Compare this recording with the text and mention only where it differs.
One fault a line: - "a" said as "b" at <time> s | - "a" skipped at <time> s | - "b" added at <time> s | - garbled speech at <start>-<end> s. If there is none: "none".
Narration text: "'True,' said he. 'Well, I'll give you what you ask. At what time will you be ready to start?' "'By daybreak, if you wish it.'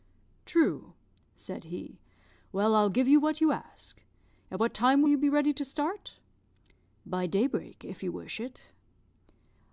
none